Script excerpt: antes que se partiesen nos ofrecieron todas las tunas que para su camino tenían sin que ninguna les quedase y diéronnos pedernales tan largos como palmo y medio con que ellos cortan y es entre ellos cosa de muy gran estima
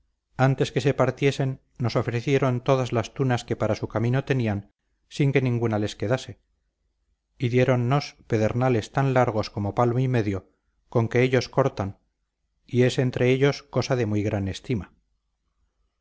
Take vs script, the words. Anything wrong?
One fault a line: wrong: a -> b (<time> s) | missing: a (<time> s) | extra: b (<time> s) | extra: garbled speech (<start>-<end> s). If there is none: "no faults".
no faults